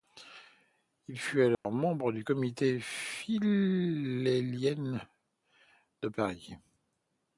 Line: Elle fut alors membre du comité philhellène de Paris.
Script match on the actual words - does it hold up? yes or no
no